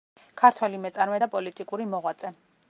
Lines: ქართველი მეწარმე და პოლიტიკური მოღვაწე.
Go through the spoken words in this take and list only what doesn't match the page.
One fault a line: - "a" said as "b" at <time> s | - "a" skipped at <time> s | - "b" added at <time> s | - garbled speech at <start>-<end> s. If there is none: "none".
none